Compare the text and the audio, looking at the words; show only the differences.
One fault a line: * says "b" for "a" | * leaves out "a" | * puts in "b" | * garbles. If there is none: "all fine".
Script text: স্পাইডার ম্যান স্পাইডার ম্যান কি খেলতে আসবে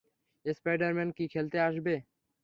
* leaves out "স্পাইডার ম্যান"